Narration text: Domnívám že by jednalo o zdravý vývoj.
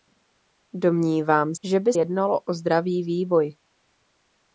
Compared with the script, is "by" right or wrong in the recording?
right